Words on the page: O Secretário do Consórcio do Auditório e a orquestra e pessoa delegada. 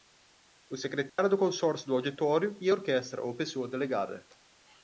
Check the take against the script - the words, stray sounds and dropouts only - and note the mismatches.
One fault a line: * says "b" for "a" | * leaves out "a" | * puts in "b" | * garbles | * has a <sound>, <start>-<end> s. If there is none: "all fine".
* has a dropout, 1.1-1.2 s
* says "ou" for "e"